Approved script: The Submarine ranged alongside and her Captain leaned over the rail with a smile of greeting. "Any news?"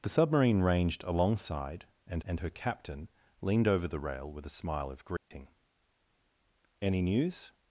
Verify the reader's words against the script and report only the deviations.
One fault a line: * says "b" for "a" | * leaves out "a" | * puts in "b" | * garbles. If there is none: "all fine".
* puts in "and"